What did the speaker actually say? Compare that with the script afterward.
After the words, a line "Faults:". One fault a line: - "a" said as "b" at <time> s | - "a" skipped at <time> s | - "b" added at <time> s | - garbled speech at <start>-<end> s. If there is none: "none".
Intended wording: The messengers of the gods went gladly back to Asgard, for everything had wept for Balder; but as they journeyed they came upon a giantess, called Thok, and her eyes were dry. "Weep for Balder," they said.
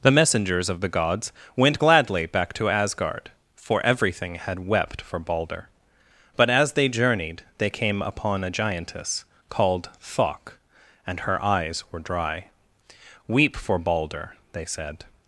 The messengers of the gods went gladly back to Asgard, for everything had wept for Balder; but as they journeyed they came upon a giantess, called Thok, and her eyes were dry. "Weep for Balder," they said.
Faults:
none